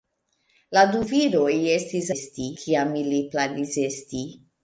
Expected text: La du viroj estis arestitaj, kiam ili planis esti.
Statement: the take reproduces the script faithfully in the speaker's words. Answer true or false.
false